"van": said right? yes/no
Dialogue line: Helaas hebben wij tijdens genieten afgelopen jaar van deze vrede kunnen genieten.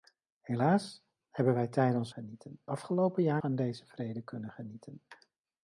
yes